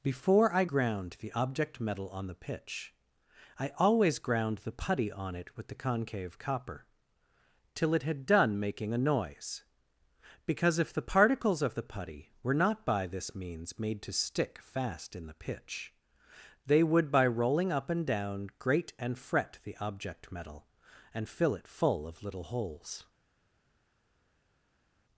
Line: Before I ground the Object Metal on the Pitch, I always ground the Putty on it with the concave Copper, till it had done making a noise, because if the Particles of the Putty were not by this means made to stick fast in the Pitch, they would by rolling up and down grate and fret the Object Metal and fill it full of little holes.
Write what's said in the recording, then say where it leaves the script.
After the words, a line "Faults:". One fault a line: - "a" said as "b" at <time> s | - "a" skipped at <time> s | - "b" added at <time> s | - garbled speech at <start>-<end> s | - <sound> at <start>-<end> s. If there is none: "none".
Before I ground the Object Metal on the Pitch, I always ground the Putty on it with the concave Copper, till it had done making a noise, because if the Particles of the Putty were not by this means made to stick fast in the Pitch, they would by rolling up and down grate and fret the Object Metal and fill it full of little holes.
Faults:
none